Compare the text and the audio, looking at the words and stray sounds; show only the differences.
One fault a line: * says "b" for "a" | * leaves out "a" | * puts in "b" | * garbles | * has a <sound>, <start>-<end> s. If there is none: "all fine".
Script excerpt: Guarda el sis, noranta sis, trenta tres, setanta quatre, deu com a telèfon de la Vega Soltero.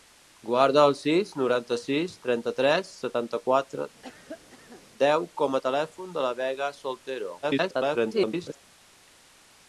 * has a cough, 4.0-4.8 s
* garbles